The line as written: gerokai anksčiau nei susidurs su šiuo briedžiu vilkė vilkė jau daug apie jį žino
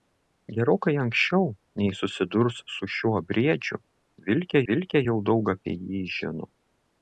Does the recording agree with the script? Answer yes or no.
yes